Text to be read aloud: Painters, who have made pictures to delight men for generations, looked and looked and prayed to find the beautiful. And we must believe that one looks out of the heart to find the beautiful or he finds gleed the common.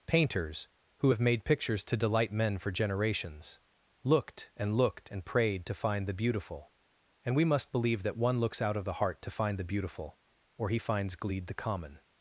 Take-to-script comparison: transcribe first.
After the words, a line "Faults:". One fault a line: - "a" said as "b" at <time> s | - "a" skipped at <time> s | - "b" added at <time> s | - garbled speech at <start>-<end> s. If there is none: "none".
Painters, who have made pictures to delight men for generations, looked and looked and prayed to find the beautiful. And we must believe that one looks out of the heart to find the beautiful or he finds gleed the common.
Faults:
none